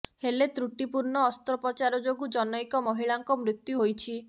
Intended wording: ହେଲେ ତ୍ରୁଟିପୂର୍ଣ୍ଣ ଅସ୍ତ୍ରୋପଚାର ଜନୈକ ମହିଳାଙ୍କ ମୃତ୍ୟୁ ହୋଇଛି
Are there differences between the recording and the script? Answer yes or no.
yes